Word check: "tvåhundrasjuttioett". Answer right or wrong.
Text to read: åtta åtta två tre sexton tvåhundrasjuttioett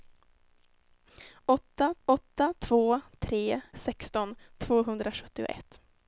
right